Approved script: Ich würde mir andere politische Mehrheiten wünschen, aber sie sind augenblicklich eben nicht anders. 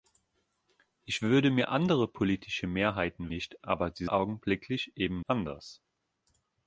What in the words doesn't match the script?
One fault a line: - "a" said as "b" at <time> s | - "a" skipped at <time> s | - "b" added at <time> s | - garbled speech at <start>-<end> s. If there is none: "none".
- "wünschen" said as "nicht" at 3.3 s
- "sind" skipped at 4.1 s
- "nicht" skipped at 5.2 s